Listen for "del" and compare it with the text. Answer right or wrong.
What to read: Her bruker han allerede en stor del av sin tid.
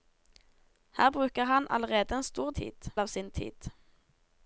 wrong